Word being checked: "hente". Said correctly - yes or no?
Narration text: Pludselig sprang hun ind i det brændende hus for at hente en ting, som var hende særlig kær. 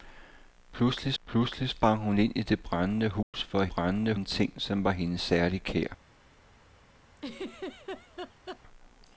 no